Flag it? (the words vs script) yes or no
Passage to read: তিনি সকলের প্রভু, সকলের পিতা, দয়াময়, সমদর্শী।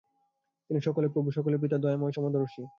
no